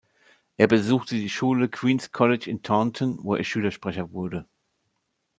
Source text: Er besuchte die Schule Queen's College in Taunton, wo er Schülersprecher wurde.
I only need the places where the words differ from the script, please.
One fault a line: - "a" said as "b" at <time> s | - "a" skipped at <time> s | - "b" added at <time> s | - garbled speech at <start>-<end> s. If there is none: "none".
none